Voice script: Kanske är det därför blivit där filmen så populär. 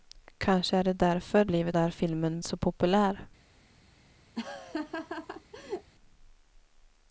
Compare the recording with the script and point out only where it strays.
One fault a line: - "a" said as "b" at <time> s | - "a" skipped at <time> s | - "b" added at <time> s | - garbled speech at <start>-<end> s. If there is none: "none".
none